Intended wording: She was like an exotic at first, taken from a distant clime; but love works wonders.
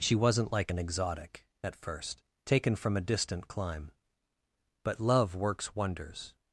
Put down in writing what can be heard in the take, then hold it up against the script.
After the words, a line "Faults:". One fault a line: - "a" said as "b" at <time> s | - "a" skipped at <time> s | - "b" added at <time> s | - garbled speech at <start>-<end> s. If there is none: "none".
She wasn't like an exotic at first, taken from a distant clime; but love works wonders.
Faults:
- "was" said as "wasn't" at 0.1 s